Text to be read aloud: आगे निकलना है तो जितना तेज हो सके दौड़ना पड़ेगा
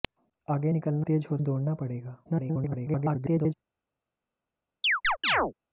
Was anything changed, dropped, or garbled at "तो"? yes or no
yes